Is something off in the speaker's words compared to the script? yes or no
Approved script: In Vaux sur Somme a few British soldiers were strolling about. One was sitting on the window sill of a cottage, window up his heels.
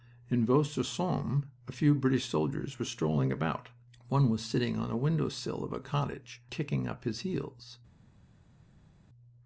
yes